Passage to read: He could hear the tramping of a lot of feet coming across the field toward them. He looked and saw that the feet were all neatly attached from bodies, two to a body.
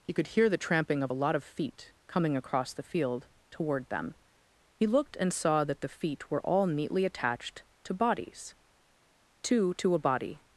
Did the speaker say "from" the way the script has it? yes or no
no